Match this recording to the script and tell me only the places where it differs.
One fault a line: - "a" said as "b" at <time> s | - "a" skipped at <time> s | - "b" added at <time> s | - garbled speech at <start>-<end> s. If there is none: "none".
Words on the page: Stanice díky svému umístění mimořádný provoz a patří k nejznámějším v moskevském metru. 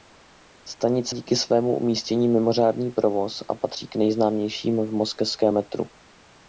none